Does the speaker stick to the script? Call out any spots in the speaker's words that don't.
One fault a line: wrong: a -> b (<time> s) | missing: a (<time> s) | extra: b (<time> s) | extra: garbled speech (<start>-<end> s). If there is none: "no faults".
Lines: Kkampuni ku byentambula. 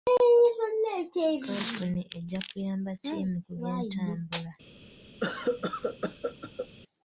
extra: ejja kuyamba ttiimu (2.2 s)